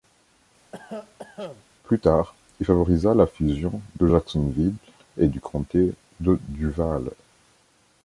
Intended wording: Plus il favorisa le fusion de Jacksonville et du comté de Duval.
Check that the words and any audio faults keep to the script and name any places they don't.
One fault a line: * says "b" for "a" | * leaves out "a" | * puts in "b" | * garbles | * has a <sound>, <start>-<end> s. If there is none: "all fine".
* has a cough, 0.7-1.6 s
* puts in "tard"
* says "la" for "le"